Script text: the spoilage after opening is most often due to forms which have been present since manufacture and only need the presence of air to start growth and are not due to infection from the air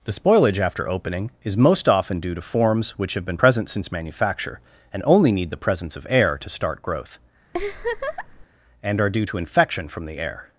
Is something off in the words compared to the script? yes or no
yes